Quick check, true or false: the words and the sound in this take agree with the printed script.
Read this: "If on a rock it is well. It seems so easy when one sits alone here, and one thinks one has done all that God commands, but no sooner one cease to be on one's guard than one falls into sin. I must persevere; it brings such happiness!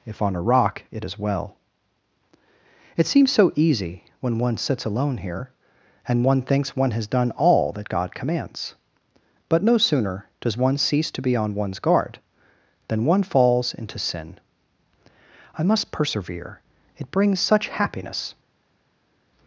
false